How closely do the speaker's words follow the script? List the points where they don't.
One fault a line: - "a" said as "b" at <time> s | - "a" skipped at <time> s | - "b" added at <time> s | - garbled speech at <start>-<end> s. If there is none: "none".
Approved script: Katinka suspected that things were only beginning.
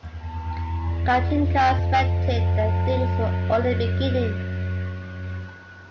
none